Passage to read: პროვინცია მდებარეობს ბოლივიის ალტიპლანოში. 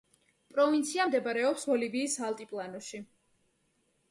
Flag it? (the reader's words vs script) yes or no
no